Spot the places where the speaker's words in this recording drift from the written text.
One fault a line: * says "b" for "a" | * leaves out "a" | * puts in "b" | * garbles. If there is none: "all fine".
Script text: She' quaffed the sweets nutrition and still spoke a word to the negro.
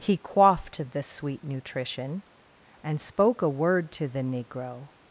* says "He" for "She"
* says "sweet" for "sweets"
* leaves out "still"